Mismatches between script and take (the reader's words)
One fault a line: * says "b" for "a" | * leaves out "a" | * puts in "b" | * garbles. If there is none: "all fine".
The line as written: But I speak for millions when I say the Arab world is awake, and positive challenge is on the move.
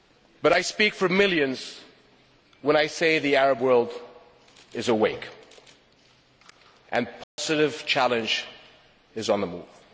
all fine